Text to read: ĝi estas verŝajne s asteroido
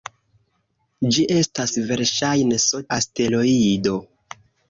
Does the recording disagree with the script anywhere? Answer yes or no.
no